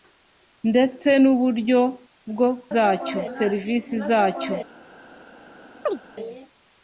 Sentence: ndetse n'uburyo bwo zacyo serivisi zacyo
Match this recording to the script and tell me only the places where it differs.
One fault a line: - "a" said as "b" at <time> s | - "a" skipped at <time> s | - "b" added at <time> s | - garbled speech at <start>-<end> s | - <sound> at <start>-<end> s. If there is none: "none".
- chirp at 5.9-6.0 s